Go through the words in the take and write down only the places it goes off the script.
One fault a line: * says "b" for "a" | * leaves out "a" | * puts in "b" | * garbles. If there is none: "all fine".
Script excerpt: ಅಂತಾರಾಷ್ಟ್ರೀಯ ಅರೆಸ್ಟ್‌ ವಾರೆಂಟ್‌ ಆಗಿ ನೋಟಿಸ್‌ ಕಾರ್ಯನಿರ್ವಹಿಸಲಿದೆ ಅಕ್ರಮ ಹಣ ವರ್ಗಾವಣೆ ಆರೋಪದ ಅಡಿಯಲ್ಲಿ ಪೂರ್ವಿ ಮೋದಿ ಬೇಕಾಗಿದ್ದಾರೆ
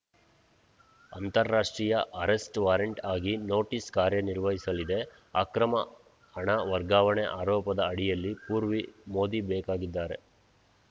all fine